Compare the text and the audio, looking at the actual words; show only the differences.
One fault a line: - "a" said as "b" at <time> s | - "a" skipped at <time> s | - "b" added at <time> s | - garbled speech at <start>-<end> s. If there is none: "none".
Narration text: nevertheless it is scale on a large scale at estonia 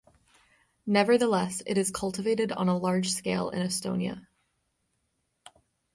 - "scale" said as "cultivated" at 1.9 s
- "at" said as "in" at 3.5 s